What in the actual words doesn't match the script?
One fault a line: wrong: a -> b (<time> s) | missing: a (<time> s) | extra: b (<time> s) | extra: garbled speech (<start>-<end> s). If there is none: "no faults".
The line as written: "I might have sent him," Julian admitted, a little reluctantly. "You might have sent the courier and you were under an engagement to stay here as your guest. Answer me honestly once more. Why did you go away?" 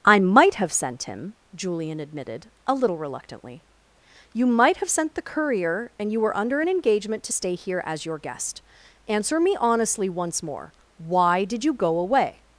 no faults